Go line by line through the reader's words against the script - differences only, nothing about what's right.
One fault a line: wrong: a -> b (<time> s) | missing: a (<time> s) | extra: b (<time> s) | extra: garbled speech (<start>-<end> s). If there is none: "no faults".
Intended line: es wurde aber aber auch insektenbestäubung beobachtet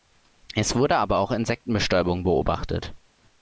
missing: aber (1.2 s)